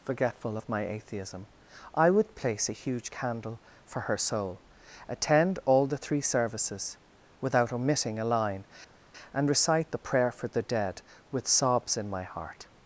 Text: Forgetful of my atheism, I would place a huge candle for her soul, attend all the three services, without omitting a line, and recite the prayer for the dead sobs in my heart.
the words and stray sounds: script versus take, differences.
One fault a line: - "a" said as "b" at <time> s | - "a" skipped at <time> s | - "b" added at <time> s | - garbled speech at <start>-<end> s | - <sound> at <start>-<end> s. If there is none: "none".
- "with" added at 11.3 s